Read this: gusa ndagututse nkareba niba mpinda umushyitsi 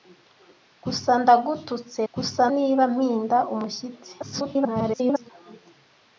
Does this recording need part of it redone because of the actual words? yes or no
yes